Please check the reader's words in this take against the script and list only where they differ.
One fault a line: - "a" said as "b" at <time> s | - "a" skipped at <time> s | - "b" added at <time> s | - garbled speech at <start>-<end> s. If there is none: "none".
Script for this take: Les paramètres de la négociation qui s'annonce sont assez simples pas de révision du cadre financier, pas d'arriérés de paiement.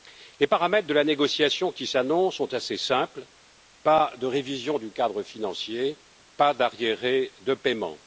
none